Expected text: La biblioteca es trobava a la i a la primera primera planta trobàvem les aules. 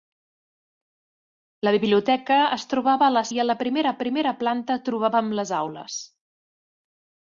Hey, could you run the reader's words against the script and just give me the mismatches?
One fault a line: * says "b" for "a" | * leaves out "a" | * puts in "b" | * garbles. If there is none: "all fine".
all fine